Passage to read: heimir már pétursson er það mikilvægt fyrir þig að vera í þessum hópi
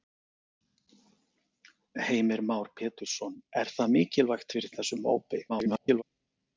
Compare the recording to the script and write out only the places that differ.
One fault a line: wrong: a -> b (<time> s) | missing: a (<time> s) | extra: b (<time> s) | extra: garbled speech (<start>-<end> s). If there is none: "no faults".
missing: þig að vera (4.7 s)
extra: garbled speech (5.5-6.0 s)